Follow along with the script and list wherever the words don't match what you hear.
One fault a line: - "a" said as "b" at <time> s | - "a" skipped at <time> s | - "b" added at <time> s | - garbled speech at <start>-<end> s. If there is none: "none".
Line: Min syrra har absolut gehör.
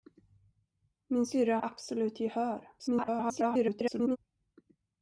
- "har" skipped at 1.6 s
- garbled speech at 2.8-4.2 s